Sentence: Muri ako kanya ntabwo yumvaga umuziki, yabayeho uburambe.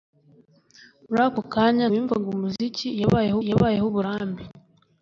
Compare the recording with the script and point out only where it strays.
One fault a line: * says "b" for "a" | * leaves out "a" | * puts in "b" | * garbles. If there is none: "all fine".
* leaves out "ntabwo"
* puts in "yabayeho"